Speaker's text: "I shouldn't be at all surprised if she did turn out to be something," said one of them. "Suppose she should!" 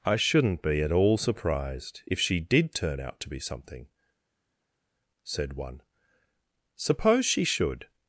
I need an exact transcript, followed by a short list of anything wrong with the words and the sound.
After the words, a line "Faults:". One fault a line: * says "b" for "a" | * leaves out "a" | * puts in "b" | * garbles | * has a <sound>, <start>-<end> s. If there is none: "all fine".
"I shouldn't be at all surprised if she did turn out to be something," said one. "Suppose she should!"
Faults:
* leaves out "of them"